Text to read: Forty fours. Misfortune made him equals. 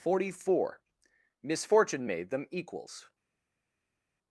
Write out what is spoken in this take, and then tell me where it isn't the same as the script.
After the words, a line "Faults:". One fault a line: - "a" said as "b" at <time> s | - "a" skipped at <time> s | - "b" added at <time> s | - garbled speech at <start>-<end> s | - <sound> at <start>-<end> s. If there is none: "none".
Forty four. Misfortune made them equals.
Faults:
- "fours" said as "four" at 0.4 s
- "him" said as "them" at 2.3 s